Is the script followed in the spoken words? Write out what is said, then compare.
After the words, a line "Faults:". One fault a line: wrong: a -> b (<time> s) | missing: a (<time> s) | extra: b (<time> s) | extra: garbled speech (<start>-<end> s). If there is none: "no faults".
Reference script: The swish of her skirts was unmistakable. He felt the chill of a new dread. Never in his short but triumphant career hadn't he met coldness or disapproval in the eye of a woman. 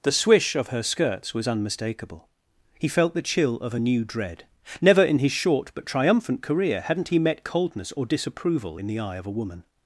The swish of her skirts was unmistakable. He felt the chill of a new dread. Never in his short but triumphant career hadn't he met coldness or disapproval in the eye of a woman.
Faults:
no faults